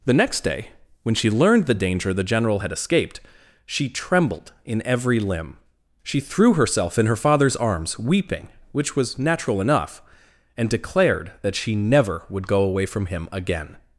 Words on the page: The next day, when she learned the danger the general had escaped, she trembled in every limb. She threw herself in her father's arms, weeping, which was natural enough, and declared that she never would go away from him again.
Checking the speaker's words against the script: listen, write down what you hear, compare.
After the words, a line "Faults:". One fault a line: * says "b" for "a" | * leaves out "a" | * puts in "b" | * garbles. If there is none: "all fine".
The next day, when she learned the danger the general had escaped, she trembled in every limb. She threw herself in her father's arms, weeping, which was natural enough, and declared that she never would go away from him again.
Faults:
all fine